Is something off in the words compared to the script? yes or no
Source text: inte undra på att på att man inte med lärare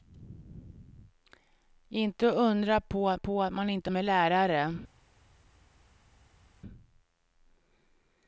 no